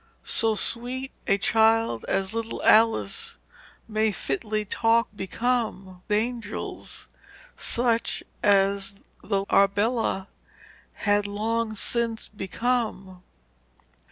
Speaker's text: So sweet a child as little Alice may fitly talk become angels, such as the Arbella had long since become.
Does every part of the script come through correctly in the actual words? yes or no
yes